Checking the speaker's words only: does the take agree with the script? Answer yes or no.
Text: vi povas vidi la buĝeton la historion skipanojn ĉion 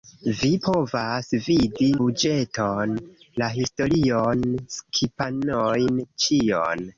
no